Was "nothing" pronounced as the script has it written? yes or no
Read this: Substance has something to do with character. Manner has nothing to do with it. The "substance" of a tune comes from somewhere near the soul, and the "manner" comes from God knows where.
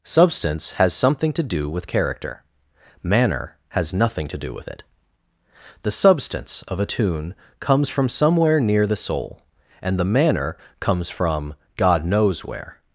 yes